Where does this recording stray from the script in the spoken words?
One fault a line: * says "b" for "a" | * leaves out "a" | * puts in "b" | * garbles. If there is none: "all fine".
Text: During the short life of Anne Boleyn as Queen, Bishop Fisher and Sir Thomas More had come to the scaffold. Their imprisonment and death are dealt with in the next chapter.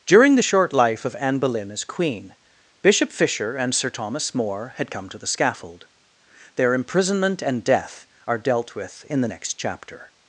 all fine